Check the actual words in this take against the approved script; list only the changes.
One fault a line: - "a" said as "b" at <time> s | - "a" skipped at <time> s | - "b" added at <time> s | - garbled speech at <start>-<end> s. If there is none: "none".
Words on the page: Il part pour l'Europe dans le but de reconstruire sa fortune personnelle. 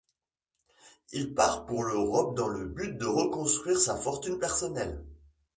none